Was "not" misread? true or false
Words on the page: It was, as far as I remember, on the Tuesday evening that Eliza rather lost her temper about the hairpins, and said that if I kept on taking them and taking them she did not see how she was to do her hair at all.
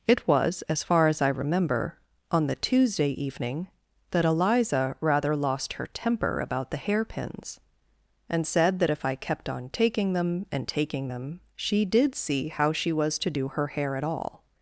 true